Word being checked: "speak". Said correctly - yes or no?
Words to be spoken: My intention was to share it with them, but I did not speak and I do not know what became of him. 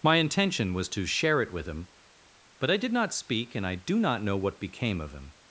yes